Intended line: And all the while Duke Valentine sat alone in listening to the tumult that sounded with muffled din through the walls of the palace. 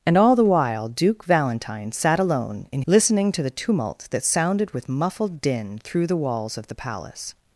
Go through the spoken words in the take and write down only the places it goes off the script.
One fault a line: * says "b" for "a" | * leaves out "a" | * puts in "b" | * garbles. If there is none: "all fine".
all fine